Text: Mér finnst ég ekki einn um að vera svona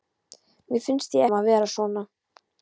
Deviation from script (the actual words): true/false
true